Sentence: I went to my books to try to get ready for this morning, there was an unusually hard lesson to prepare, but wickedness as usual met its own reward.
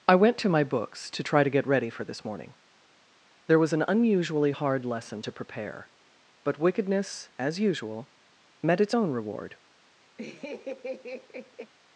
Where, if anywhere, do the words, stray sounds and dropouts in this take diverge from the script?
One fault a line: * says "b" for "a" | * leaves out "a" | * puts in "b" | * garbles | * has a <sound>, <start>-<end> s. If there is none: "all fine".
* has a laugh, 10.2-11.7 s